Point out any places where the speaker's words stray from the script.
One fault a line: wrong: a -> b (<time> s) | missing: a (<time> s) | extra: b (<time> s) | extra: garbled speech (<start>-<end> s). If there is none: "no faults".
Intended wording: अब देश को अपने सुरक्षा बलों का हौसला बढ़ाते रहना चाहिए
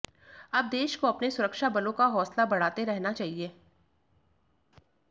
no faults